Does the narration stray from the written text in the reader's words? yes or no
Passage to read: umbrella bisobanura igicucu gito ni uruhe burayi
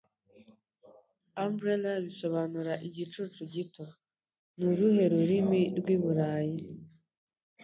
yes